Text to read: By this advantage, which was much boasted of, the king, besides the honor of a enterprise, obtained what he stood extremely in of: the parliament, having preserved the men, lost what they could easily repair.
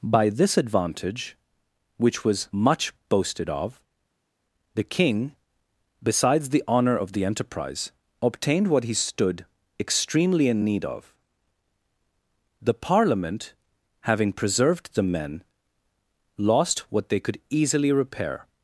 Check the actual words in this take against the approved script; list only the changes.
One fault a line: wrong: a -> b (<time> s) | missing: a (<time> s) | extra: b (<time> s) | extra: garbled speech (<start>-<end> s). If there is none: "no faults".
wrong: a -> the (7.1 s)
extra: need (10.6 s)